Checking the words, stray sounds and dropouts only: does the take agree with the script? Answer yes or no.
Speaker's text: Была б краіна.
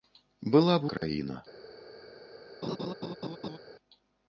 no